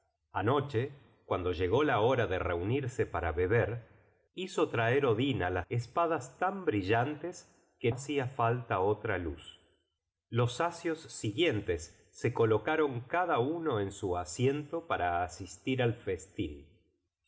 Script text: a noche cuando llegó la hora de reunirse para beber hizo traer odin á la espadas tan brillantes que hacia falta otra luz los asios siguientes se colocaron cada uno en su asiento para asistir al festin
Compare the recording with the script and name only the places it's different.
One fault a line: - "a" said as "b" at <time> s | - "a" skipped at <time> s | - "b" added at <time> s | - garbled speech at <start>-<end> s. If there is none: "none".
none